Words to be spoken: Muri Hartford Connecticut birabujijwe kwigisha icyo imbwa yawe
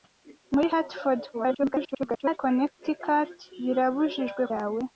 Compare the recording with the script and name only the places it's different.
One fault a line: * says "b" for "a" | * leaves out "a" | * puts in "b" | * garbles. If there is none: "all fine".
* garbles
* leaves out "kwigisha icyo imbwa"